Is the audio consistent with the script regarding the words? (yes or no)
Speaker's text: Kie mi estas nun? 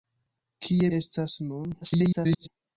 no